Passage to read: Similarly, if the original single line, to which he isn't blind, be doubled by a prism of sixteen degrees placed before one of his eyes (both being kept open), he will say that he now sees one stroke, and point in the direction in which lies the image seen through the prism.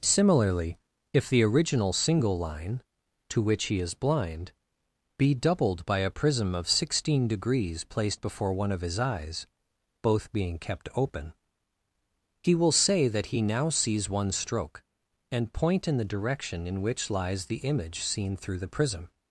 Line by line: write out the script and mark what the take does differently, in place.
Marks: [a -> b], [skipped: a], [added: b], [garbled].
Similarly, if the original single line, to which he [isn't -> is] blind, be doubled by a prism of sixteen degrees placed before one of his eyes (both being kept open), he will say that he now sees one stroke, and point in the direction in which lies the image seen through the prism.